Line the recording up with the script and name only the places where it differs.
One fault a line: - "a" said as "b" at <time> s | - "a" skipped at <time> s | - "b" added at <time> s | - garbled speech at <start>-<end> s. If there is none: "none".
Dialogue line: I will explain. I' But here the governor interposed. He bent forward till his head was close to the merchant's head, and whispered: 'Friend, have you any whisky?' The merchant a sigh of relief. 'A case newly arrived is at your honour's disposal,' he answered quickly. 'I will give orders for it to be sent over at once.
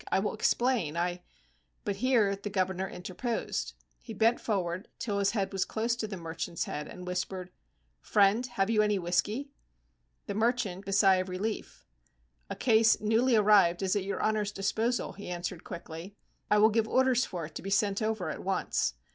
none